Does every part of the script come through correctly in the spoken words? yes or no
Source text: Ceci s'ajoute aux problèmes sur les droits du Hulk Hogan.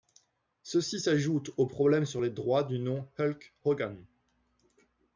no